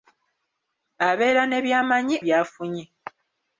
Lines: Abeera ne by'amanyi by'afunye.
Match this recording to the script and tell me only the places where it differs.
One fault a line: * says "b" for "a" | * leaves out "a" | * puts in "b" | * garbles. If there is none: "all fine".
all fine